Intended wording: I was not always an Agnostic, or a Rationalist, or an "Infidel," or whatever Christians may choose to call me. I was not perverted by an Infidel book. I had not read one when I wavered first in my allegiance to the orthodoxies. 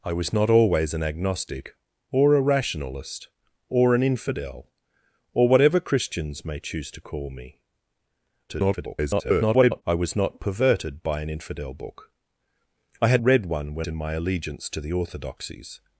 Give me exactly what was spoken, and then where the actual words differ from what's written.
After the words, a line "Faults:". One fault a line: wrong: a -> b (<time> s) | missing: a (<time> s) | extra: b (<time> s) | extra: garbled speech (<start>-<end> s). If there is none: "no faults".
I was not always an Agnostic, or a Rationalist, or an "Infidel," or whatever Christians may choose to call me. [garbled] I was not perverted by an Infidel book. I had read one when in my allegiance to the orthodoxies.
Faults:
extra: garbled speech (8.5-9.8 s)
missing: not (13.2 s)
missing: I wavered first (13.9 s)